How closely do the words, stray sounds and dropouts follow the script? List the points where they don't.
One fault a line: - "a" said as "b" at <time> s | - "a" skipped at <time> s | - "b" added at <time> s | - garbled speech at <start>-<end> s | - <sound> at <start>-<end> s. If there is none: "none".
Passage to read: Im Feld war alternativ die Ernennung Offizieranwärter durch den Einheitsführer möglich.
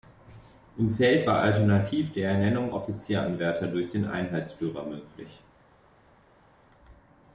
none